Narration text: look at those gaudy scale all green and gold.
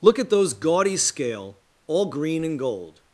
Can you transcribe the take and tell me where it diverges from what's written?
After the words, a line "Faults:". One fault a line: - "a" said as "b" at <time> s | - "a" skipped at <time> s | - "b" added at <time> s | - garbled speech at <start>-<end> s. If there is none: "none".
look at those gaudy scale all green and gold.
Faults:
none